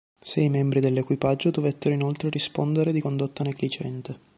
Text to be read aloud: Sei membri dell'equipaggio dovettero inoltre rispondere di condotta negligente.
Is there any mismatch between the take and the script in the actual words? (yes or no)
no